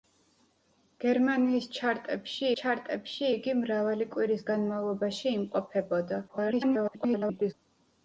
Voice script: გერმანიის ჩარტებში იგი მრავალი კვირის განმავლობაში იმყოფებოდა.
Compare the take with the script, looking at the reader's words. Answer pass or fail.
fail